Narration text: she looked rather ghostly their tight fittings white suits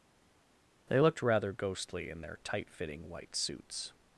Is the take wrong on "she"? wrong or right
wrong